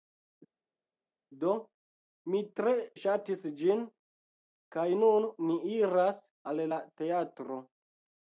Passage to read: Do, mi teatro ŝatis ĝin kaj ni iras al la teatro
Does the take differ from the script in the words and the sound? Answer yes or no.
yes